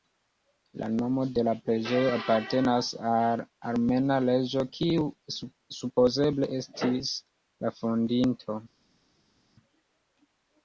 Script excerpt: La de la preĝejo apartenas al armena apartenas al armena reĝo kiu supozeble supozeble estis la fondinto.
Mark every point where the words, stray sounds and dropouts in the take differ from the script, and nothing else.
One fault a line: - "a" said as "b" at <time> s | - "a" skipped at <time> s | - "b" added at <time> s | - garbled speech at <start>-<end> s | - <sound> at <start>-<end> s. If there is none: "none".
- "nomo" added at 0.9 s
- "apartenas al armena" skipped at 4.2 s
- "supozeble" skipped at 6.5 s